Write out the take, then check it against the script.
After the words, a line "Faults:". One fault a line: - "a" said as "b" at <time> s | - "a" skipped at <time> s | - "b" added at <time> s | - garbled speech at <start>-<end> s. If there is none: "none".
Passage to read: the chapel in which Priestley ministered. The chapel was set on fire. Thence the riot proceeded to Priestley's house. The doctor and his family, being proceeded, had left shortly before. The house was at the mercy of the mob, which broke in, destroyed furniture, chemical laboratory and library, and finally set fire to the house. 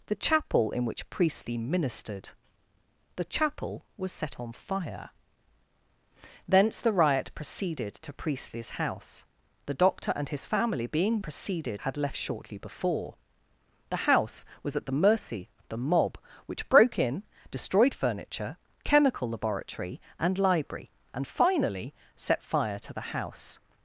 the chapel in which Priestley ministered. The chapel was set on fire. Thence the riot proceeded to Priestley's house. The doctor and his family, being proceeded, had left shortly before. The house was at the mercy of the mob, which broke in, destroyed furniture, chemical laboratory and library, and finally set fire to the house.
Faults:
none